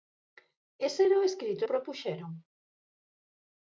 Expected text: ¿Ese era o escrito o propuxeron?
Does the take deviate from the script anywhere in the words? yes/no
no